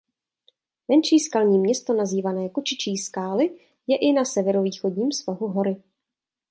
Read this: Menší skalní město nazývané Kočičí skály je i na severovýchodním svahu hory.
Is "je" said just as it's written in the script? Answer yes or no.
yes